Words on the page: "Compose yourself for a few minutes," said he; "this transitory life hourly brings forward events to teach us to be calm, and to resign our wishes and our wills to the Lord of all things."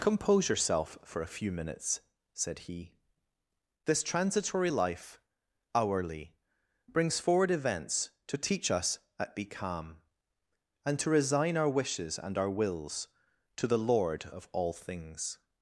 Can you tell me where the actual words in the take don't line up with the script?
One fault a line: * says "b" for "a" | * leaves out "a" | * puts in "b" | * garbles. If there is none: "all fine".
* says "at" for "to"